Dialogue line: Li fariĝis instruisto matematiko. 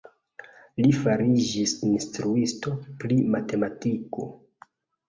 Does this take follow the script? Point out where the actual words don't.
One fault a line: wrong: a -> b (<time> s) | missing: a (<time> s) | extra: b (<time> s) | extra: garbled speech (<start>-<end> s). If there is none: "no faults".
extra: pri (3.0 s)